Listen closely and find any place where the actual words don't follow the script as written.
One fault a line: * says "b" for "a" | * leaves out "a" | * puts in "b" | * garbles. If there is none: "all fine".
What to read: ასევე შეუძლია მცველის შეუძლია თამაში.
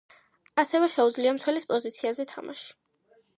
* says "პოზიციაზე" for "შეუძლია"